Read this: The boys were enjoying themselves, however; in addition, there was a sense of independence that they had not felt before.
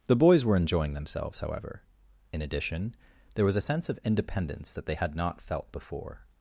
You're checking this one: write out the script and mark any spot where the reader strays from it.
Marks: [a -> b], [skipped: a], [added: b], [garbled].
The boys were enjoying themselves, however; in addition, there was a sense of independence that they had not felt before.